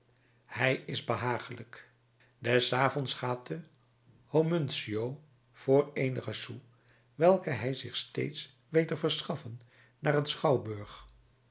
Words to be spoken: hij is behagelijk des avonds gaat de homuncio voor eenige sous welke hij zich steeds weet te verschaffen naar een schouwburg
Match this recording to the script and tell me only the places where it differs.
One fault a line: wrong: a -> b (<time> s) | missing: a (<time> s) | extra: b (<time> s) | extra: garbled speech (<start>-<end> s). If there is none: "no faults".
no faults